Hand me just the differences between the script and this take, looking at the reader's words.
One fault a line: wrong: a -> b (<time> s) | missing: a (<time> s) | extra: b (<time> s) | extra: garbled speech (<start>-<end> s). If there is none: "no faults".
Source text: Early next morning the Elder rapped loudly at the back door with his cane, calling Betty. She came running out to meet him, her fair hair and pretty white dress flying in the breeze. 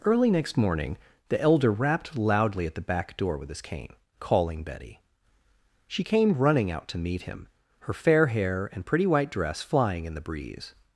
no faults